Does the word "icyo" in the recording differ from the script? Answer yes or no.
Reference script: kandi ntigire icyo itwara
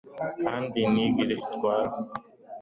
yes